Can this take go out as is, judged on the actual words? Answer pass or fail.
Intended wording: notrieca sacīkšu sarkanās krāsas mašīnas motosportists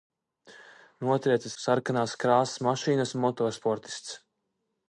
fail